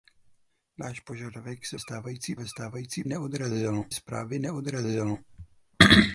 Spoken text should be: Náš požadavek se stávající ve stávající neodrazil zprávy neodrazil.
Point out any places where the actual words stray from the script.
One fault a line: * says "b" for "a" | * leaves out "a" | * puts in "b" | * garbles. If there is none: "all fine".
all fine